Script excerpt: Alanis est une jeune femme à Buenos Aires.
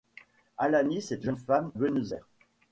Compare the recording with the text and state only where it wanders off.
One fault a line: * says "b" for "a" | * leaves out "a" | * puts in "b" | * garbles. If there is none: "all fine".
* leaves out "une"
* leaves out "à"